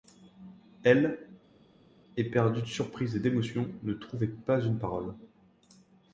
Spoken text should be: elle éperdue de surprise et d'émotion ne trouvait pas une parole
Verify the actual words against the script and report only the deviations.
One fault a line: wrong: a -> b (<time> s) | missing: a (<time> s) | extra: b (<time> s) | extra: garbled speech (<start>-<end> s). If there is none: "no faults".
no faults